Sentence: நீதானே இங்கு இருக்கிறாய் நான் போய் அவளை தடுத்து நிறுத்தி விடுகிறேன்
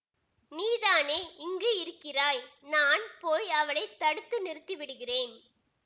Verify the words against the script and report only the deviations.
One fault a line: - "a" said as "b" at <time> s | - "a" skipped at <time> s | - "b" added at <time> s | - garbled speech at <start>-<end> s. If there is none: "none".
none